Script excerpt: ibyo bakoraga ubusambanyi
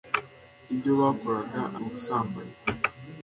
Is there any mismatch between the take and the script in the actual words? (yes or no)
no